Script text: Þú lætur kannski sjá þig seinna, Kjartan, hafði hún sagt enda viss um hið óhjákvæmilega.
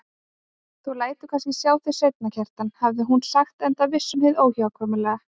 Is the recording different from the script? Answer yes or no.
no